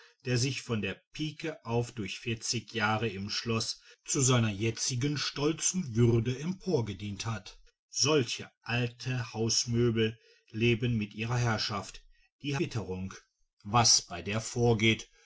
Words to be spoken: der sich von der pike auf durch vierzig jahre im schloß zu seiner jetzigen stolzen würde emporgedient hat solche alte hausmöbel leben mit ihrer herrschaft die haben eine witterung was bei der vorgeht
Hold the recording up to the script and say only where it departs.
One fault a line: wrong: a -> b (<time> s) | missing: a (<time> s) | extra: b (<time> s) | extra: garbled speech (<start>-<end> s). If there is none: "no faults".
missing: haben eine (12.6 s)